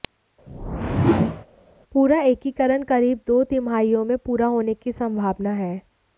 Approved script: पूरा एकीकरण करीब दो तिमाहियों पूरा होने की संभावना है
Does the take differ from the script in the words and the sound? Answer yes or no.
yes